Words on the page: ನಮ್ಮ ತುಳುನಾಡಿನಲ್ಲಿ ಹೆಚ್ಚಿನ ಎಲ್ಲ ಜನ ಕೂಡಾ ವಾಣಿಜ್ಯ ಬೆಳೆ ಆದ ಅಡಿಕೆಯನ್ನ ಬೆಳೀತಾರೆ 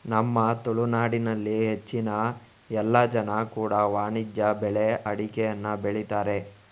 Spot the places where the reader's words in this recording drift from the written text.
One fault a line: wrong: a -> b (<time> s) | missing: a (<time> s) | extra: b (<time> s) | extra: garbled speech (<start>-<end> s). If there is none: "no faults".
missing: ಆದ (4.9 s)